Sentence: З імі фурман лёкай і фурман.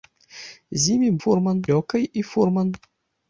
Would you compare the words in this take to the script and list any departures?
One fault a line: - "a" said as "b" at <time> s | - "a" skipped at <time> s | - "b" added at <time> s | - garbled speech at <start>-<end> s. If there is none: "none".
none